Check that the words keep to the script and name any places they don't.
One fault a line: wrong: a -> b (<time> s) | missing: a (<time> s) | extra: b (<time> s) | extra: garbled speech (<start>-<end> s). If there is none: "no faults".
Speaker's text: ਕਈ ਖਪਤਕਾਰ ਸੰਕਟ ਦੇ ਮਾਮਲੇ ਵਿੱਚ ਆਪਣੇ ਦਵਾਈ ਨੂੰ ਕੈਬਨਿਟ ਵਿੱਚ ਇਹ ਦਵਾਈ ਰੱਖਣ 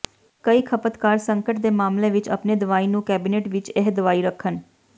no faults